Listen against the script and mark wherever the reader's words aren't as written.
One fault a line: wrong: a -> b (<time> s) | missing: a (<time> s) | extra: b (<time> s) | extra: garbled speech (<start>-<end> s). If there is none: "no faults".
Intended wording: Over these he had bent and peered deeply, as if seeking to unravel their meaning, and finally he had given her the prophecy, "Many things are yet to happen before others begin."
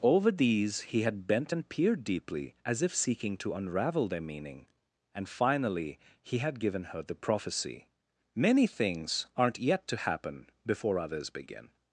wrong: are -> aren't (9.4 s)